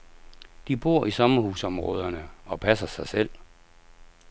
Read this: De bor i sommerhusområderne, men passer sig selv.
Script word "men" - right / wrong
wrong